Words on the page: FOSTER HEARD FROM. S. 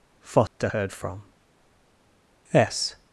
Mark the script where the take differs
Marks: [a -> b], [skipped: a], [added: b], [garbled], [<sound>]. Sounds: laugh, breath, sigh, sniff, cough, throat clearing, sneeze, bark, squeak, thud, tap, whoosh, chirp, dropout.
FOSTER [dropout] HEARD FROM. S.